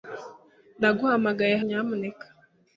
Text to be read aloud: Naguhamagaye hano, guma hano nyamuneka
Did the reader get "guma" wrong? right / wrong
wrong